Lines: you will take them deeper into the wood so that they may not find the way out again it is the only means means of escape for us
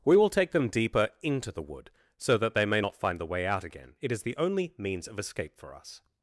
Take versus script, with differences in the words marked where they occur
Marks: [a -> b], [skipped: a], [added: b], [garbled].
[you -> we] will take them deeper into the wood so that they may not find the way out again it is the only means [skipped: means] of escape for us